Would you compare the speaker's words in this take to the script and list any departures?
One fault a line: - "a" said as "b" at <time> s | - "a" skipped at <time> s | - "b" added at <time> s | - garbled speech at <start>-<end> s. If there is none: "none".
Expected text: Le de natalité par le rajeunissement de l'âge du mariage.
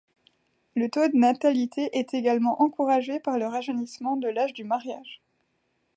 - "taux" added at 0.9 s
- "est également encouragé" added at 1.9 s